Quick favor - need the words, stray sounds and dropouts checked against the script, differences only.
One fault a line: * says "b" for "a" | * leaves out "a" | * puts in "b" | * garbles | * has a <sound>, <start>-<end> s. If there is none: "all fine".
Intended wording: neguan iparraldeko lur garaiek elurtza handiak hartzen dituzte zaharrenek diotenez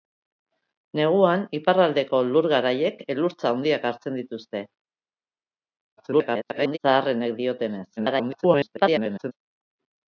* garbles
* garbles